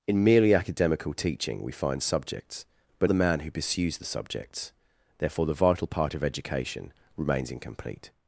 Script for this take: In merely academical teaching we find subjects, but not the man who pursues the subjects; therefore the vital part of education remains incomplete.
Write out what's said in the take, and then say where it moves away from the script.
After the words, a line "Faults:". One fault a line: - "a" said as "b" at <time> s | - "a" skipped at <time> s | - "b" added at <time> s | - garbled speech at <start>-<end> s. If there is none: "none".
In merely academical teaching we find subjects, but the man who pursues the subjects; therefore the vital part of education remains incomplete.
Faults:
- "not" skipped at 3.1 s